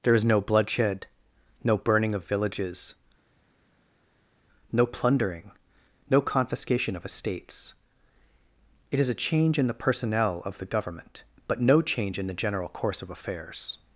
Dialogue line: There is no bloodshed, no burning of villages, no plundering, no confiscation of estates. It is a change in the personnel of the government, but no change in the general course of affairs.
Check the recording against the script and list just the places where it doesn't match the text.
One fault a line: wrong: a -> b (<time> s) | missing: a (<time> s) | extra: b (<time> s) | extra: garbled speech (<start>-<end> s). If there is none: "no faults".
no faults